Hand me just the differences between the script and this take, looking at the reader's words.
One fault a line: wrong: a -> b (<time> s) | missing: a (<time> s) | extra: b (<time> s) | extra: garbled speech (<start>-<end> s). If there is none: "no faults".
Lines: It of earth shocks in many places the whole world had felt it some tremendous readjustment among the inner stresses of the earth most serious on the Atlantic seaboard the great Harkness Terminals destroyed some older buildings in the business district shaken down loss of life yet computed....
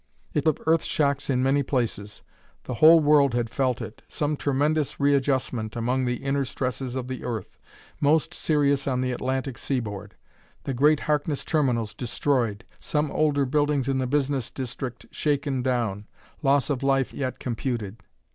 no faults